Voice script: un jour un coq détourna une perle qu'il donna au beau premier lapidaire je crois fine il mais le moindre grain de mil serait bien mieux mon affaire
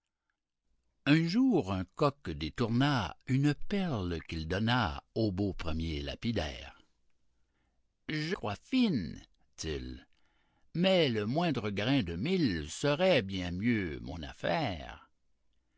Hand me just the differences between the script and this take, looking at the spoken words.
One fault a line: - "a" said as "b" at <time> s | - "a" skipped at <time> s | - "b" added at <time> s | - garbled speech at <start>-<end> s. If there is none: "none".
none